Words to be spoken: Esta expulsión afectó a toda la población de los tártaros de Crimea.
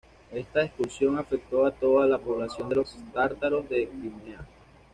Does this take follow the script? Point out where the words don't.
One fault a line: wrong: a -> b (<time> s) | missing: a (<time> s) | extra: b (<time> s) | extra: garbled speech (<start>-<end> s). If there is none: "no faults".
no faults